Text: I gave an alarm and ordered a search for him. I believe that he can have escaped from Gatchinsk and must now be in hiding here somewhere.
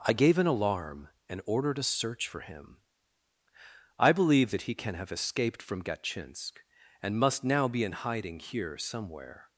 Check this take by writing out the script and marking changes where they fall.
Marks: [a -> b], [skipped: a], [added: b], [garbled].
I gave an alarm and ordered a search for him. I believe that he can have escaped from Gatchinsk and must now be in hiding here somewhere.